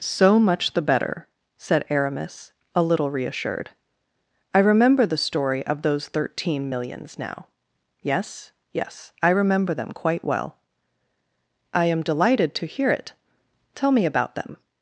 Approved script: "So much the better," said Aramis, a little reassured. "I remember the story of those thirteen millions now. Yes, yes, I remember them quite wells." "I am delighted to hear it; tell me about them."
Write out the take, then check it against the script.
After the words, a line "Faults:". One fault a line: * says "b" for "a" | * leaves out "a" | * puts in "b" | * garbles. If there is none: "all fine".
"So much the better," said Aramis, a little reassured. "I remember the story of those thirteen millions now. Yes, yes, I remember them quite well." "I am delighted to hear it; tell me about them."
Faults:
* says "well" for "wells"